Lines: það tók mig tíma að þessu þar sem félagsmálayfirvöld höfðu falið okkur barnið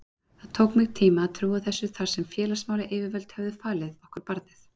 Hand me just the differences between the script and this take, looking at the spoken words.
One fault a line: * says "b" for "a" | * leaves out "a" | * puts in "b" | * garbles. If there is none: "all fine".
* puts in "trúa"